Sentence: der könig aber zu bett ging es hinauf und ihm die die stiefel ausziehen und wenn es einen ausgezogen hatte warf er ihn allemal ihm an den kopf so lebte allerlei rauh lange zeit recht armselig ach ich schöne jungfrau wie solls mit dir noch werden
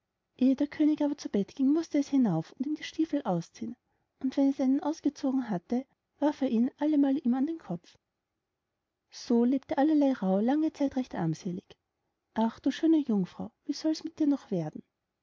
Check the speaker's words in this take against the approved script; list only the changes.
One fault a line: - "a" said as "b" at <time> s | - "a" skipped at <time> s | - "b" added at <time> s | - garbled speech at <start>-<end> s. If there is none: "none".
- "mußte" added at 1.7 s
- "die" skipped at 2.8 s
- "ich" said as "du" at 12.6 s